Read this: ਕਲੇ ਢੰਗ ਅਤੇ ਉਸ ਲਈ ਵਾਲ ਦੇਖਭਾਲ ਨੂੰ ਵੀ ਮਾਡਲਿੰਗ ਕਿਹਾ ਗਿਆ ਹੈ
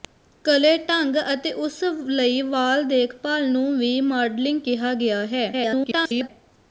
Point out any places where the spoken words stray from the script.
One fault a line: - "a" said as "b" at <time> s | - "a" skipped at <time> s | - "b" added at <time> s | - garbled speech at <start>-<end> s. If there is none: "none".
- garbled speech at 5.5-6.3 s